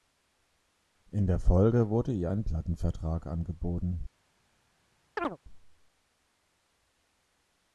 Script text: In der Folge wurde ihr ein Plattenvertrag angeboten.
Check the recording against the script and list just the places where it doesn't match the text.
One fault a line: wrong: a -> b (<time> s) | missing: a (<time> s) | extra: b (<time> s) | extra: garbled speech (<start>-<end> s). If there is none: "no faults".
no faults